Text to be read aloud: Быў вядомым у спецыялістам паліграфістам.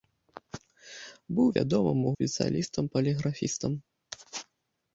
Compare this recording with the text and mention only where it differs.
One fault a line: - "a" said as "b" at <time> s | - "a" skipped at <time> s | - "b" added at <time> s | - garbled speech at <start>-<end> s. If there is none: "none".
none